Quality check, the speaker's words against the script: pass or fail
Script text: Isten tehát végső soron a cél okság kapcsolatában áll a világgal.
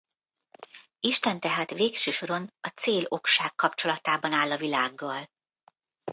pass